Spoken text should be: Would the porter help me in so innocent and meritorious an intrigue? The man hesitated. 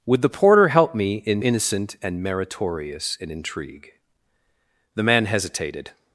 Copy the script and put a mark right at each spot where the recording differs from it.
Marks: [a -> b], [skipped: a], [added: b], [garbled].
Would the porter help me in [skipped: so] innocent and meritorious an intrigue? The man hesitated.